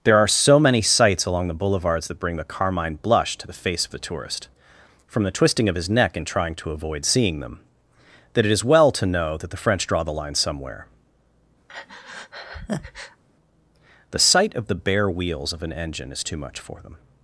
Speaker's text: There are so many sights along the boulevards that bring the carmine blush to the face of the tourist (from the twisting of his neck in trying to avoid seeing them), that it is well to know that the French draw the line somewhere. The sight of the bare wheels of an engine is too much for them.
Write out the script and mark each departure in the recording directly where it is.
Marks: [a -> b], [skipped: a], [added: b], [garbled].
There are so many sights along the boulevards that bring the carmine blush to the face of the tourist (from the twisting of his neck in trying to avoid seeing them), that it is well to know that the French draw the line somewhere. The sight of the bare wheels of an engine is too much for them.